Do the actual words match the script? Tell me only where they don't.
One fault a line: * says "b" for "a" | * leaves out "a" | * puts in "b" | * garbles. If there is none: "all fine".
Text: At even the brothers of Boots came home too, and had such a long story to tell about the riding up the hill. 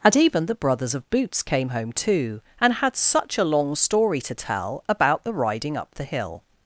* says "And" for "At"